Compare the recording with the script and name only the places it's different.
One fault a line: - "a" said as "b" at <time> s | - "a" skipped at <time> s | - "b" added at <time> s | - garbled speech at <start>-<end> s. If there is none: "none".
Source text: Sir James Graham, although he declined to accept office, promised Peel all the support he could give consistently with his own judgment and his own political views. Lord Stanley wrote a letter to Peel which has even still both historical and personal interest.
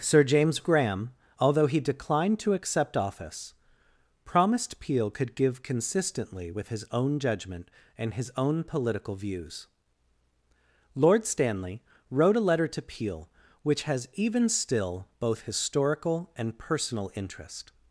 - "all the support he" skipped at 5.1 s